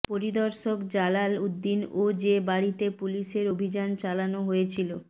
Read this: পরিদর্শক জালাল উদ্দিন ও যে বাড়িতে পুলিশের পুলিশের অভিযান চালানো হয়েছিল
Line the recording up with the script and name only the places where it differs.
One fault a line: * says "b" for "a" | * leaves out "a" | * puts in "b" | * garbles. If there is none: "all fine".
* leaves out "পুলিশের"